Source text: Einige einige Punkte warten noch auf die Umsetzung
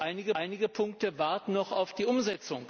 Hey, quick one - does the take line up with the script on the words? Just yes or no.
yes